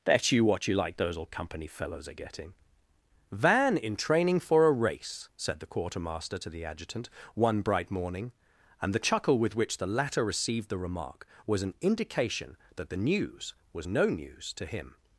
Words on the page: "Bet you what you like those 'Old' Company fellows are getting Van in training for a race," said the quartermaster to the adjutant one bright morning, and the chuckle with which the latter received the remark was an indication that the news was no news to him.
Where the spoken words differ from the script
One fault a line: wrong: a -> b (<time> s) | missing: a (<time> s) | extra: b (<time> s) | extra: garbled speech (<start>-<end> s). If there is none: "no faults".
no faults